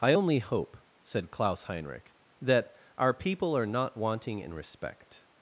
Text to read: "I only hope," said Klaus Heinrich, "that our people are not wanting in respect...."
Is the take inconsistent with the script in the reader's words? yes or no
no